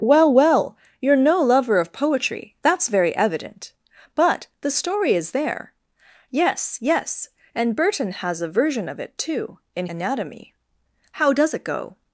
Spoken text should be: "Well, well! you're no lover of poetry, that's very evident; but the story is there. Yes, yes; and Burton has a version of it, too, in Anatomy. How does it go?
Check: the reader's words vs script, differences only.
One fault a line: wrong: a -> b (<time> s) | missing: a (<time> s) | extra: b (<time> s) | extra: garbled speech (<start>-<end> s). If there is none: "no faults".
no faults